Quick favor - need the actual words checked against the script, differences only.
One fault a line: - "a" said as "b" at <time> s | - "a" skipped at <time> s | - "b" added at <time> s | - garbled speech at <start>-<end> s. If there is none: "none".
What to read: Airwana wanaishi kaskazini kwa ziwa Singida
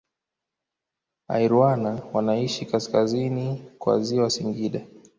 none